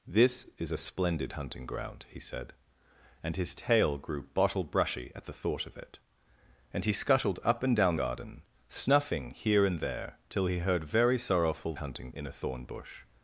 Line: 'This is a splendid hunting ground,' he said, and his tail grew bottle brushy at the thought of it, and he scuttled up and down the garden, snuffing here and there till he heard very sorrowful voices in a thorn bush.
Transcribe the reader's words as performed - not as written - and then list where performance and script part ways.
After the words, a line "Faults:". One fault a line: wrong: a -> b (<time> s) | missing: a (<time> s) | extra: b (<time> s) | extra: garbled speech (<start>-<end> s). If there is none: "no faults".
'This is a splendid hunting ground,' he said, and his tail grew bottle brushy at the thought of it, and he scuttled up and down garden, snuffing here and there till he heard very sorrowful hunting in a thorn bush.
Faults:
missing: the (8.0 s)
wrong: voices -> hunting (11.8 s)